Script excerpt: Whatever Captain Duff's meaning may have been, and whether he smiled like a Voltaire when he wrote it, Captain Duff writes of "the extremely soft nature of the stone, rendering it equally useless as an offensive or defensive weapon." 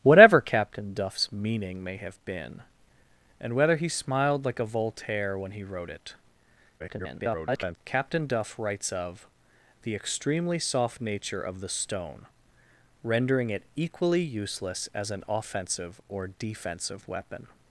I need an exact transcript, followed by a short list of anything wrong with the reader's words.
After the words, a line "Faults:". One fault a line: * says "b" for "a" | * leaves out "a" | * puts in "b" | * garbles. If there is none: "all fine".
Whatever Captain Duff's meaning may have been, and whether he smiled like a Voltaire when he wrote it, [garbled] Captain Duff writes of "the extremely soft nature of the stone, rendering it equally useless as an offensive or defensive weapon."
Faults:
* garbles